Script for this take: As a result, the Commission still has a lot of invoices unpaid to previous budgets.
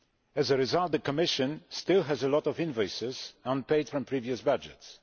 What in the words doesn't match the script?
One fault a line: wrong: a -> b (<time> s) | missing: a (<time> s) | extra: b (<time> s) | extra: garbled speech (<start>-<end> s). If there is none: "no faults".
wrong: to -> from (3.9 s)